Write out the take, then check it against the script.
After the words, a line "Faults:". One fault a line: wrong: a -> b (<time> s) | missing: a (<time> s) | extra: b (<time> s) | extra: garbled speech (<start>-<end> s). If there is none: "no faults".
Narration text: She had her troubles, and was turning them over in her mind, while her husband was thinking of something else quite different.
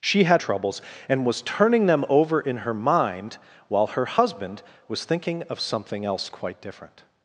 She had troubles, and was turning them over in her mind, while her husband was thinking of something else quite different.
Faults:
missing: her (0.4 s)